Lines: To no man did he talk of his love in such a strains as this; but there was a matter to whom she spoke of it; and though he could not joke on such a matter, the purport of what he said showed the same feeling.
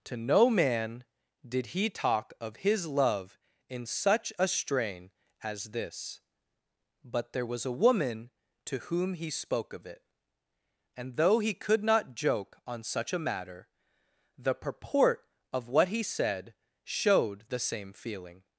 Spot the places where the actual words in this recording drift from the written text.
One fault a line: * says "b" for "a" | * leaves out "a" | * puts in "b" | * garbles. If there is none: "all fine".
* says "strain" for "strains"
* says "woman" for "matter"
* says "he" for "she"